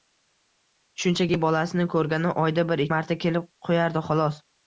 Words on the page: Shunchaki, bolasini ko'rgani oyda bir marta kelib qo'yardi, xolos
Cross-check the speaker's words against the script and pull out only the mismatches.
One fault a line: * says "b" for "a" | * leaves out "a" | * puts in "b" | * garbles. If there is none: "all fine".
all fine